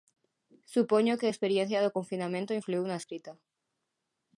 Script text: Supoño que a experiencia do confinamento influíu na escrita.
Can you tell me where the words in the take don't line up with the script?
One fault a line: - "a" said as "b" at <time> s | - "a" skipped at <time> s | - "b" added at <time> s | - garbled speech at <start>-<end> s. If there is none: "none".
none